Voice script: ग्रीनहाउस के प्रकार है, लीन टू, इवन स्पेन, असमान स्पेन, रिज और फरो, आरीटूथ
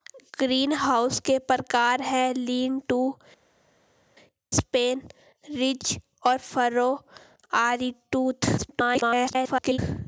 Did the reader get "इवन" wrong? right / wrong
wrong